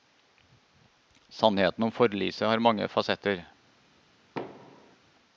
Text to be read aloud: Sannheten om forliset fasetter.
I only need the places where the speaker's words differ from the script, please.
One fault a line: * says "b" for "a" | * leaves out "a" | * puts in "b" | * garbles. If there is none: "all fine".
* puts in "har mange"